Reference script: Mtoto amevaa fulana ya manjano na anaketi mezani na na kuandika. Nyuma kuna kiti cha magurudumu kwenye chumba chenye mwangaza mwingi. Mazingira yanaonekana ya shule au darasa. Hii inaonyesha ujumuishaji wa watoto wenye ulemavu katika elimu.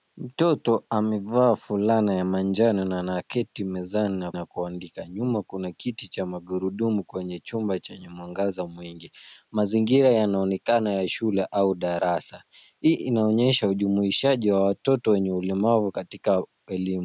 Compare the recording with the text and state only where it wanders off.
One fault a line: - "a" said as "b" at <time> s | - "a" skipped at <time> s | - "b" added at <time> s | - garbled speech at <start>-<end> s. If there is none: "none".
none